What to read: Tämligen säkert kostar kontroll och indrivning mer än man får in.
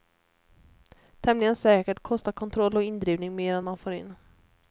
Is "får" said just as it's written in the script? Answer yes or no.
yes